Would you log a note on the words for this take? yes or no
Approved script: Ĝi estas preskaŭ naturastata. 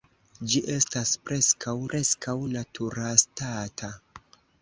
yes